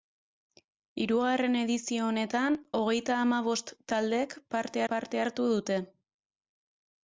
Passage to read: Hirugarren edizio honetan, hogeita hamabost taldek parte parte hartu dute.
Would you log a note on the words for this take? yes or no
no